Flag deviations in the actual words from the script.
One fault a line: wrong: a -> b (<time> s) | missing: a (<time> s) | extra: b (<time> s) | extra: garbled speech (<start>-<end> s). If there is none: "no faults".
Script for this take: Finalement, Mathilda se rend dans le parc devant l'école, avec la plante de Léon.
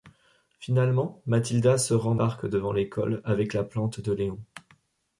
missing: dans le (2.1 s)